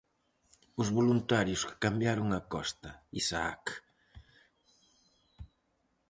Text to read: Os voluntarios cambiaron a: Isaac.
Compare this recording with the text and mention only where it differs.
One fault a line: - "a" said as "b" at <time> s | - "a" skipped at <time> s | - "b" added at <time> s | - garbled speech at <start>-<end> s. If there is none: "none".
- "que" added at 1.7 s
- "Costa" added at 2.5 s